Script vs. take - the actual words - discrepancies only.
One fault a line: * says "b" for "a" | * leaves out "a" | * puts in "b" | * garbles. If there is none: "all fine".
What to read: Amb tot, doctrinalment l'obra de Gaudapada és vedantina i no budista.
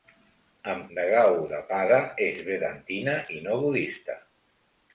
* leaves out "tot doctrinalment l'obra"